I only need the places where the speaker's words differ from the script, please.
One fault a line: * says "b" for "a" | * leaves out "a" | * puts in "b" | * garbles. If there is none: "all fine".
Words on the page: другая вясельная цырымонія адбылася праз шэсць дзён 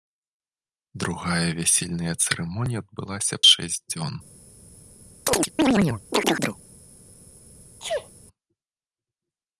* leaves out "праз"